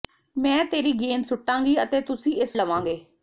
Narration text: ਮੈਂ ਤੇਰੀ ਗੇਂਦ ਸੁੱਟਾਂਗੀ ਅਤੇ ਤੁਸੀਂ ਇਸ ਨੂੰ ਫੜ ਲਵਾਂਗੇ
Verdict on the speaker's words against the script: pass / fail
fail